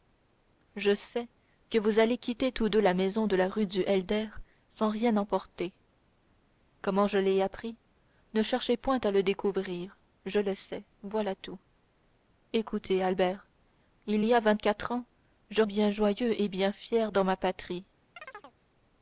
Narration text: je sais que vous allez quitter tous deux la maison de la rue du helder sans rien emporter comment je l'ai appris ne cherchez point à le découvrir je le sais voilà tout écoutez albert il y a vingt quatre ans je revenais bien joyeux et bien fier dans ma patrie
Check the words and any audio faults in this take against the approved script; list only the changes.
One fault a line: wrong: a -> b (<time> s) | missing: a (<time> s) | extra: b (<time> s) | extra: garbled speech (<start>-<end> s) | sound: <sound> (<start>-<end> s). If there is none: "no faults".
missing: revenais (15.6 s)
sound: chirp (18.2-18.6 s)